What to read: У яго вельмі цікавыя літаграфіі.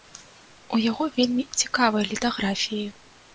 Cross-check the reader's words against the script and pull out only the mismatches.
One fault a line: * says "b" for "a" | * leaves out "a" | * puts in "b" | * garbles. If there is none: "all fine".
all fine